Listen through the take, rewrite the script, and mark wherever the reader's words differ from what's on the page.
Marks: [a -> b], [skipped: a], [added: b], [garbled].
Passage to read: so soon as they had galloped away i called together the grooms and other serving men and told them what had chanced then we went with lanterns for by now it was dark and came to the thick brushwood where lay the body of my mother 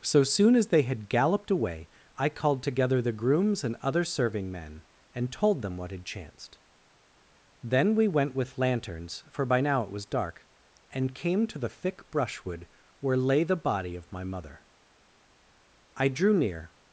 so soon as they had galloped away i called together the grooms and other serving men and told them what had chanced then we went with lanterns for by now it was dark and came to the thick brushwood where lay the body of my mother [added: i drew near]